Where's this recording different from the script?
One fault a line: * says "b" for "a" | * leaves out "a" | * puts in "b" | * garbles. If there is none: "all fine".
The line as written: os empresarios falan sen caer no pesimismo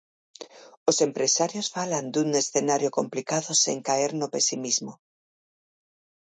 * puts in "dun escenario complicado"